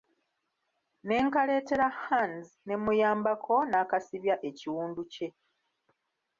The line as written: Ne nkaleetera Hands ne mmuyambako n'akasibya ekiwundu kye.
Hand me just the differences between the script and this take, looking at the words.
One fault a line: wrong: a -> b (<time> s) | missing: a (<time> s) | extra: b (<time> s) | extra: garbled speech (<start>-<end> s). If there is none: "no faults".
no faults